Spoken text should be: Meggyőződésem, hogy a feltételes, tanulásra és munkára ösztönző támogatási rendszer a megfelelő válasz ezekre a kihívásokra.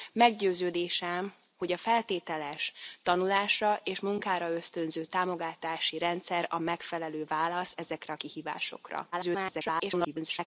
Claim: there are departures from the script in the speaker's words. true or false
true